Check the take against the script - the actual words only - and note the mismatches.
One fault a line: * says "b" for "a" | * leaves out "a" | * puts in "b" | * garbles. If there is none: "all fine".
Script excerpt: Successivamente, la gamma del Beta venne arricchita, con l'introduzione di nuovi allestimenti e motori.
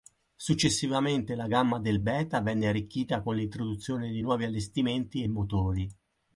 all fine